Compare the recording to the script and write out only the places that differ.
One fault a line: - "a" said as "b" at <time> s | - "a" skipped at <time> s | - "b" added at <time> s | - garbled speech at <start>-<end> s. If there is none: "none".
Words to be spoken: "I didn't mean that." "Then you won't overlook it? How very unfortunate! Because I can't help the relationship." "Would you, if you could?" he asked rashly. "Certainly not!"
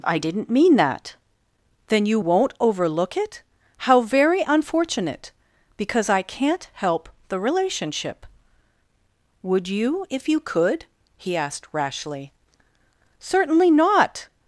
none